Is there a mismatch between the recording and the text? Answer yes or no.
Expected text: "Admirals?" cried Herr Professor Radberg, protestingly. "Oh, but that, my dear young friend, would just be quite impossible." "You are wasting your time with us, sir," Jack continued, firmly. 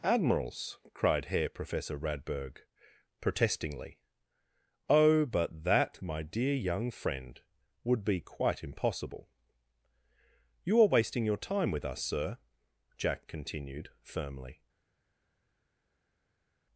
yes